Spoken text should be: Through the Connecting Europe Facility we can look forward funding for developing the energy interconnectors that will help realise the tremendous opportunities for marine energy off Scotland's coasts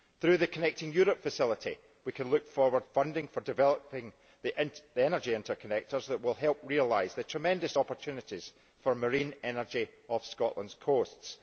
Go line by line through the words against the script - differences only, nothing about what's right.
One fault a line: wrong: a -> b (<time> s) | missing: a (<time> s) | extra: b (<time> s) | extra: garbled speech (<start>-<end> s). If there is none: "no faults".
no faults